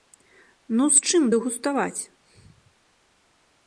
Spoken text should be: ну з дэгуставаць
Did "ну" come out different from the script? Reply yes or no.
no